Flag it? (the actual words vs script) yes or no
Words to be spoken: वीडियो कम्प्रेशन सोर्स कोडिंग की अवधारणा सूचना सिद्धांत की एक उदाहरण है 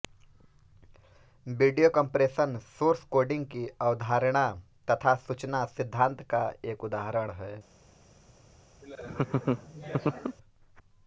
yes